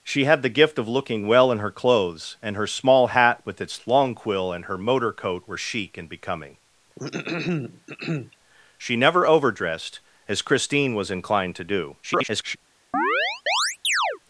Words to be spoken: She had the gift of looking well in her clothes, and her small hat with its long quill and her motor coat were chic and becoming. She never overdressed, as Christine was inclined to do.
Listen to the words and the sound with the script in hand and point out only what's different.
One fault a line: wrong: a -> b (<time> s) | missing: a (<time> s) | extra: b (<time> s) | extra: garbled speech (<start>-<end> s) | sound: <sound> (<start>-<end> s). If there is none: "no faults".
sound: throat clearing (7.0-8.4 s)
extra: garbled speech (12.0-12.6 s)
sound: chirp (12.9-14.2 s)